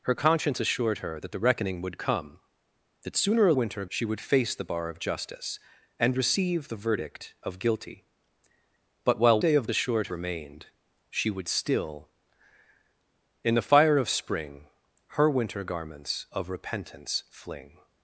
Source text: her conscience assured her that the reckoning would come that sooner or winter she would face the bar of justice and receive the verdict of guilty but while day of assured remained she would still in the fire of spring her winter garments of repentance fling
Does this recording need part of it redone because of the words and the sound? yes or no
no